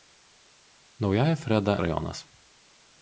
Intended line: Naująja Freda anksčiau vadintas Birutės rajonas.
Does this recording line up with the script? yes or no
no